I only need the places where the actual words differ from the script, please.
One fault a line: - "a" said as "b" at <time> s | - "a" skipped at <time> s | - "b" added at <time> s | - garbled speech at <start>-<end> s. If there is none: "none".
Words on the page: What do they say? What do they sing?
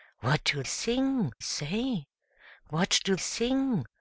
- "they" said as "sing" at 0.6 s
- "they" skipped at 3.1 s